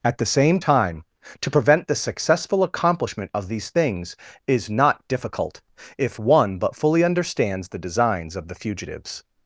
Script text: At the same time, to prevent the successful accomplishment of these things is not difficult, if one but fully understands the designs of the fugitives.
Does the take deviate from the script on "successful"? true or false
false